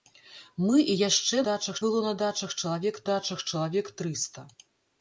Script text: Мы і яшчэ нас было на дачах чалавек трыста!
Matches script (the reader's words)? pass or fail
fail